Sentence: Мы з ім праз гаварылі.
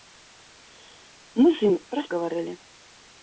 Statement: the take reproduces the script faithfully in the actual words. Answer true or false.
true